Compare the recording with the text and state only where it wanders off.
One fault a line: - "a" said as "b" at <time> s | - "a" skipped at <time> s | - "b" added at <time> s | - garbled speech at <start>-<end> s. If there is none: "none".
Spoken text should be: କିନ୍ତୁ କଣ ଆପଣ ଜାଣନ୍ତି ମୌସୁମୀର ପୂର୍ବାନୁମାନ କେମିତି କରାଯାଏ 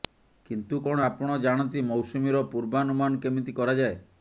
none